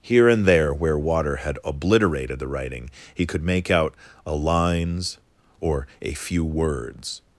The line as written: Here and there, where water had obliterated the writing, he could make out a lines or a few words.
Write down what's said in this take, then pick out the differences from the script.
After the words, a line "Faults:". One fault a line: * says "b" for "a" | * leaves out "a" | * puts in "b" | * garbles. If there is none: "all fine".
Here and there, where water had obliterated the writing, he could make out a lines or a few words.
Faults:
all fine